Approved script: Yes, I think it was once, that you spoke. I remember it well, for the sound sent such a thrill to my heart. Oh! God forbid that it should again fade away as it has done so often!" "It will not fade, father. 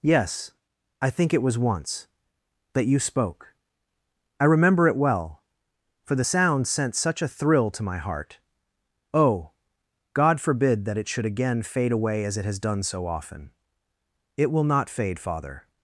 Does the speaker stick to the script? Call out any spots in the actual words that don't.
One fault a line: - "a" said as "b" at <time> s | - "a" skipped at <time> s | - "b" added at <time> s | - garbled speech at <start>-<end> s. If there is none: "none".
none